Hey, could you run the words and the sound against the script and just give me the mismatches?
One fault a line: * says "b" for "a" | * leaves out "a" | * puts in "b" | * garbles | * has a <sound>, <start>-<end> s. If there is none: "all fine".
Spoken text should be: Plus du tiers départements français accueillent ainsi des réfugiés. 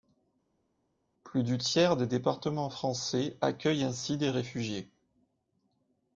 * puts in "des"